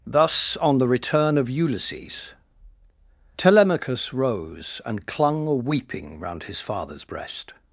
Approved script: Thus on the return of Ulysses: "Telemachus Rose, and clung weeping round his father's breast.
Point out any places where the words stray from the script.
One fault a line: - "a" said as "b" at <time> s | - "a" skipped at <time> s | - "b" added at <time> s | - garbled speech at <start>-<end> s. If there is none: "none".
none